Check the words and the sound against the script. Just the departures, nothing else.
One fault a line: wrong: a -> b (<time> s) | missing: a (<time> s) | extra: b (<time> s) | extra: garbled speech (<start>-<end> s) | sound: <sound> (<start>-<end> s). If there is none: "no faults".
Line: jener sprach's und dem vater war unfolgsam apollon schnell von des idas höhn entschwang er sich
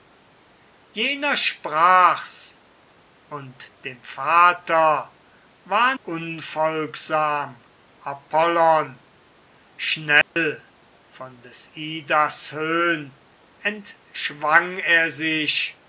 sound: dropout (10.2-10.4 s)